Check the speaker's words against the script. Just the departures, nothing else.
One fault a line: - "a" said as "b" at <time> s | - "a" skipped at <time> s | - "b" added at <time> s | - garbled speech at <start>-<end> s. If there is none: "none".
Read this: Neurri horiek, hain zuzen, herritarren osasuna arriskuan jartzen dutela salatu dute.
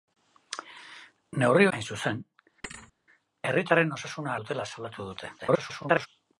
- "horiek" skipped at 1.7 s
- "arriskuan jartzen" skipped at 4.3 s
- garbled speech at 5.4-6.1 s